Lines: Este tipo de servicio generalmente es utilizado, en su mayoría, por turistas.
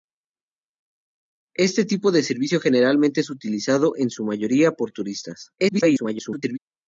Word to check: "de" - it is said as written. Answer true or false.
true